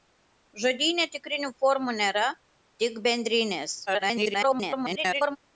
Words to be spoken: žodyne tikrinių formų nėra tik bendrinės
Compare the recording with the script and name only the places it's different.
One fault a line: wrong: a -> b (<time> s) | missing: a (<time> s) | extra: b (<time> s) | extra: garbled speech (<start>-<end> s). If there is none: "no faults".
extra: garbled speech (3.9-5.4 s)